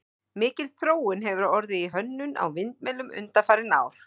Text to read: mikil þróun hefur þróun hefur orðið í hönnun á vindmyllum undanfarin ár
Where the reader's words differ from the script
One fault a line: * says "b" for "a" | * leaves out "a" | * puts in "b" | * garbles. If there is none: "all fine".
* leaves out "þróun hefur"